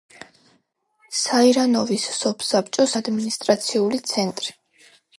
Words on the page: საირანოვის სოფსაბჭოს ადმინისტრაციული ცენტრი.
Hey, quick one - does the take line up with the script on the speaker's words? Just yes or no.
yes